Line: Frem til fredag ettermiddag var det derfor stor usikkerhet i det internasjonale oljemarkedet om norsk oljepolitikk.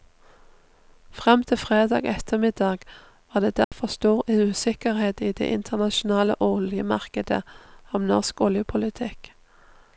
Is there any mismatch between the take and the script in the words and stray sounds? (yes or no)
yes